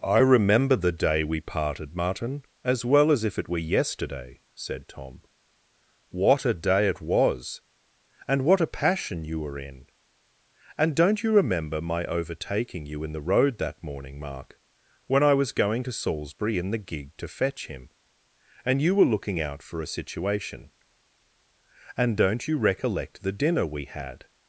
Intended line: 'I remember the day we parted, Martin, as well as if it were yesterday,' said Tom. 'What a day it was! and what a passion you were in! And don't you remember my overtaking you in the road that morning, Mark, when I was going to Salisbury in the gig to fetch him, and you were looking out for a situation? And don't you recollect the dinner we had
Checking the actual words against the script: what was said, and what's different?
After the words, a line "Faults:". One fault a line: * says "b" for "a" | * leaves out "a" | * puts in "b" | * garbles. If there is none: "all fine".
'I remember the day we parted, Martin, as well as if it were yesterday,' said Tom. 'What a day it was! and what a passion you were in! And don't you remember my overtaking you in the road that morning, Mark, when I was going to Salisbury in the gig to fetch him, and you were looking out for a situation? And don't you recollect the dinner we had
Faults:
all fine